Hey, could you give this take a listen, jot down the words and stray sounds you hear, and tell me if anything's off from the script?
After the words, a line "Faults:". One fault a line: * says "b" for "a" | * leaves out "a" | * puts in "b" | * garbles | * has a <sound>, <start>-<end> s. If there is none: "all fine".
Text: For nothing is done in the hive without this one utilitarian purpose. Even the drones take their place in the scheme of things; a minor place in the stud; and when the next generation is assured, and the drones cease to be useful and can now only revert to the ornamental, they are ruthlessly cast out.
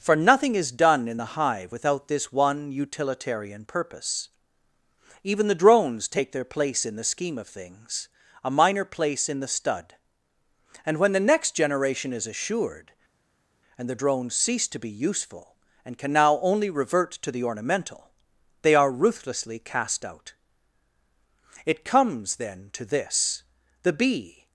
For nothing is done in the hive without this one utilitarian purpose. Even the drones take their place in the scheme of things; a minor place in the stud; and when the next generation is assured, and the drones cease to be useful and can now only revert to the ornamental, they are ruthlessly cast out. It comes, then, to this. The bee
Faults:
* puts in "It comes then to this The bee"